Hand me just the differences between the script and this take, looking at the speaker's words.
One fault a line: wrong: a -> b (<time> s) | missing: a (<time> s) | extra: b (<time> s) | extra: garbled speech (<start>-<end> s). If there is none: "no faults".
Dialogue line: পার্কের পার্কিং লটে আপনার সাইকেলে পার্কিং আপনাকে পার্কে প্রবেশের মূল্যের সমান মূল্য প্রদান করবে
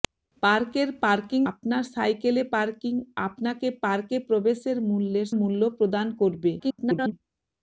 missing: লটে (1.4 s)
missing: সমান (5.3 s)
extra: garbled speech (6.6-7.1 s)